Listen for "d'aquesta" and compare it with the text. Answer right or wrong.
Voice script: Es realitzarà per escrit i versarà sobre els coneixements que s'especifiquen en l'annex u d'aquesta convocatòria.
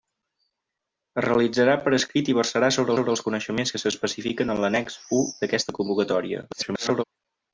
right